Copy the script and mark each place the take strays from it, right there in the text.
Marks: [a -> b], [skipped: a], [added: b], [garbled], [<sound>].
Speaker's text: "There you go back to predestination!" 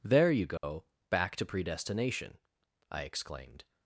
"There you go [dropout] back to predestination!" [added: I exclaimed]